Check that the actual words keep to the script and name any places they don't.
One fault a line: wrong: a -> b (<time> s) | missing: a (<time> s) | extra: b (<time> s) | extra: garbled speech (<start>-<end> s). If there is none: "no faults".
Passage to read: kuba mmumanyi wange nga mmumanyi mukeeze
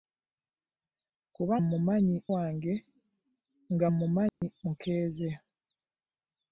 no faults